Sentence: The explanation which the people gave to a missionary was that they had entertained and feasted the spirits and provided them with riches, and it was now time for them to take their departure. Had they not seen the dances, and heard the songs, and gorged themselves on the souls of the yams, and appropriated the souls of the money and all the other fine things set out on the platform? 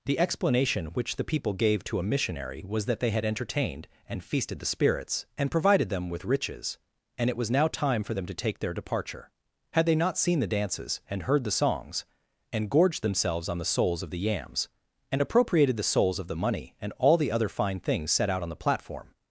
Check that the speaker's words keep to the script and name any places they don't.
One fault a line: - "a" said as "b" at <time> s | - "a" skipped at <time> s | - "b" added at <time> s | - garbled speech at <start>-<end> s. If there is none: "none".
none